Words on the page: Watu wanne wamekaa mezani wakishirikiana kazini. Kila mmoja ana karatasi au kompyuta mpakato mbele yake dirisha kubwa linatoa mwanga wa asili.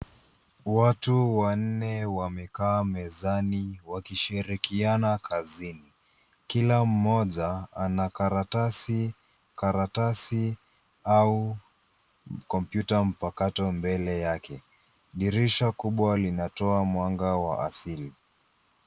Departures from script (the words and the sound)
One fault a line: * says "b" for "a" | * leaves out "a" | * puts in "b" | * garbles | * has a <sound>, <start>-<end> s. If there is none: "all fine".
* puts in "karatasi"